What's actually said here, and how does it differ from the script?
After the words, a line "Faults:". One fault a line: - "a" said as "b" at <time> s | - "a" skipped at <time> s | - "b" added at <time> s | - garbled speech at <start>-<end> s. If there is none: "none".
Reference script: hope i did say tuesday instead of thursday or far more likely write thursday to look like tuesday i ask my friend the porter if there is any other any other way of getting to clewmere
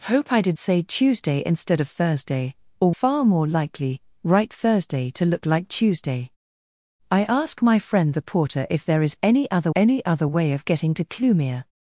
hope i did say tuesday instead of thursday or far more likely write thursday to look like tuesday i ask my friend the porter if there is any other any other way of getting to clewmere
Faults:
none